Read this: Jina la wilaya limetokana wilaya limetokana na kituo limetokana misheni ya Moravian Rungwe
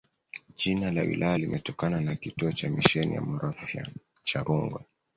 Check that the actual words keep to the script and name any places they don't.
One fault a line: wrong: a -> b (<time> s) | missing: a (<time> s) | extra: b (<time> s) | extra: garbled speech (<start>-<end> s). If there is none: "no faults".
missing: wilaya limetokana (2.0 s)
wrong: limetokana -> cha (2.5 s)
extra: cha (4.2 s)